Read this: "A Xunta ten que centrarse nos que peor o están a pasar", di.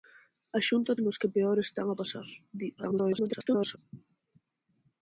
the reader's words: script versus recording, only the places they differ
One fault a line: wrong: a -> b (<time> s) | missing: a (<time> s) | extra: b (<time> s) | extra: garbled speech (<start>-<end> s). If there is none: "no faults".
missing: ten que centrarse (1.0 s)
extra: garbled speech (2.8-3.8 s)